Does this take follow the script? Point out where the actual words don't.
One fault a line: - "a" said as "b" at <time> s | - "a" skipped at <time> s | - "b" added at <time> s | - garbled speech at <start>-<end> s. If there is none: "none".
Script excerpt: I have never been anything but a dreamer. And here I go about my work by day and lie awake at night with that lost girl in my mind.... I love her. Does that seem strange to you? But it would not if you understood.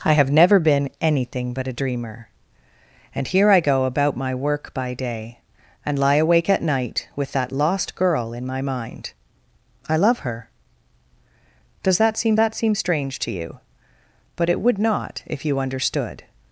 - "that seem" added at 12.3 s